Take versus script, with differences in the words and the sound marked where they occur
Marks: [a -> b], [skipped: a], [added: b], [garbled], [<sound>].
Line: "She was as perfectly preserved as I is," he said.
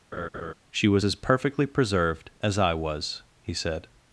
[laugh] "She was as perfectly preserved as I [is," -> was] he said.